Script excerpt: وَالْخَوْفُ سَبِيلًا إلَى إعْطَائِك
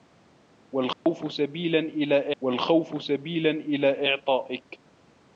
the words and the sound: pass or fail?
fail